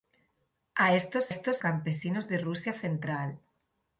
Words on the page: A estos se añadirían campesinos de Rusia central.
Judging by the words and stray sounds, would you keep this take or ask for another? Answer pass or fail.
fail